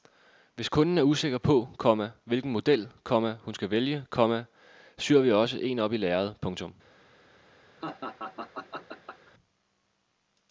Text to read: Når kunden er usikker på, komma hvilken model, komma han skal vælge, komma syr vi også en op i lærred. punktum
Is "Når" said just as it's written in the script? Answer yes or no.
no